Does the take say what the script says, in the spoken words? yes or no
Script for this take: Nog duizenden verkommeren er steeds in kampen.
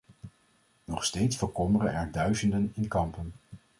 no